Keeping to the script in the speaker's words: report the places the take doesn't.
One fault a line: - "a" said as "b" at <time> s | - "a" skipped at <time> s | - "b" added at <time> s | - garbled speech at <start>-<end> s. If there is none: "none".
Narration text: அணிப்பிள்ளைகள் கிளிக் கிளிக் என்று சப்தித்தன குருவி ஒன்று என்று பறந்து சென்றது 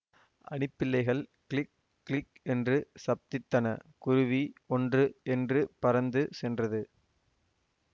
none